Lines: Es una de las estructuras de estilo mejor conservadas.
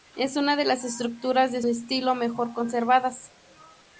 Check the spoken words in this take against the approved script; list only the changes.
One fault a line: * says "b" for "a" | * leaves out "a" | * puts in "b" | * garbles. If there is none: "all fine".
all fine